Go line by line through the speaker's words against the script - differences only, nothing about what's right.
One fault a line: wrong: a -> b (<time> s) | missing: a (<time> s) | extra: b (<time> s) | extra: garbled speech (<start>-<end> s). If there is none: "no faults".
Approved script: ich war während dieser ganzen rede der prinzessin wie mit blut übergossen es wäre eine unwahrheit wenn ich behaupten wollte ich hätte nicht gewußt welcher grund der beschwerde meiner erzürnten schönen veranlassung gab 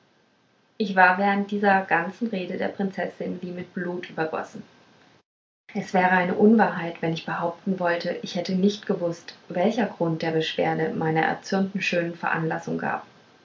no faults